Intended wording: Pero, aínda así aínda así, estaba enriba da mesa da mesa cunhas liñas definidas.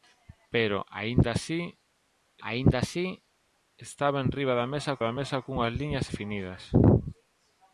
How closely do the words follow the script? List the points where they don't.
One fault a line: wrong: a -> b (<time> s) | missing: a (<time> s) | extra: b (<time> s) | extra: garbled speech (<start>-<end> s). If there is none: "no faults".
no faults